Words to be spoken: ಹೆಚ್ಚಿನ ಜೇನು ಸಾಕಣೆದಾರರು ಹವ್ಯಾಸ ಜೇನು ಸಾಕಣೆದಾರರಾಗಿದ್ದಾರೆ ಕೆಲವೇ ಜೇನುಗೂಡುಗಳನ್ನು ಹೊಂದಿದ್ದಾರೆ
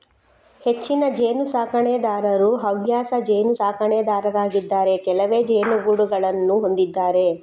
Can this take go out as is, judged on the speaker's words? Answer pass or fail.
pass